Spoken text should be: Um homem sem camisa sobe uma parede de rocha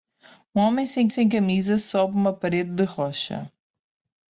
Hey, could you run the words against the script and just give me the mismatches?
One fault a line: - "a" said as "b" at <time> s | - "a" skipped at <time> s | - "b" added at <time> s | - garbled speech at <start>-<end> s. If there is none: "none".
- "sem" added at 1.1 s